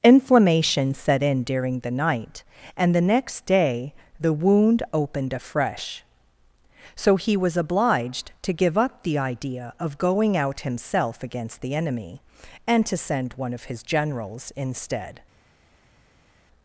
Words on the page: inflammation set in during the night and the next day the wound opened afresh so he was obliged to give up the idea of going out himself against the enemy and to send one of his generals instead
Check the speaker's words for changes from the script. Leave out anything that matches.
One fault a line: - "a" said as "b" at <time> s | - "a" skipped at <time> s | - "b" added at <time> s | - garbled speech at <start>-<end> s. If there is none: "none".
none